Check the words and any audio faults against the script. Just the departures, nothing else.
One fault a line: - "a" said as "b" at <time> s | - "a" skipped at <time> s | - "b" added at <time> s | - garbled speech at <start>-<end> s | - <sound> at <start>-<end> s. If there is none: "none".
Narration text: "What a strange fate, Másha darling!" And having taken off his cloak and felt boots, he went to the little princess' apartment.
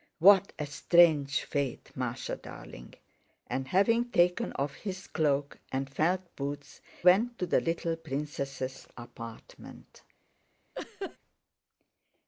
- "he" skipped at 6.8 s
- laugh at 10.7-11.2 s